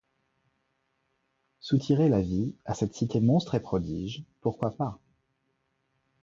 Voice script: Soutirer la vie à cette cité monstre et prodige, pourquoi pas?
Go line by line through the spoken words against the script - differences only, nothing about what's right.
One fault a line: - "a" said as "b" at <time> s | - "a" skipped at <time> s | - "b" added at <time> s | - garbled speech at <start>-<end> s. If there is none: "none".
none